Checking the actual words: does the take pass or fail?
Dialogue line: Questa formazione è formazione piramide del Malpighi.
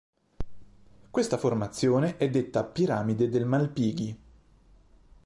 fail